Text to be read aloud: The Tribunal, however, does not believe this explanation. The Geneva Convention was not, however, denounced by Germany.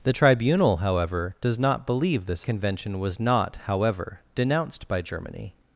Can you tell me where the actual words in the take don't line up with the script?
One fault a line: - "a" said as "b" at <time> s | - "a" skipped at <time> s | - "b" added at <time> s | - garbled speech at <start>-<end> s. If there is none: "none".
- "explanation The Geneva" skipped at 2.5 s